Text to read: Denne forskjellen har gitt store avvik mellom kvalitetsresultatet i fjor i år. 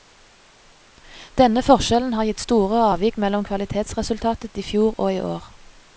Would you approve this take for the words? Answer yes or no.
no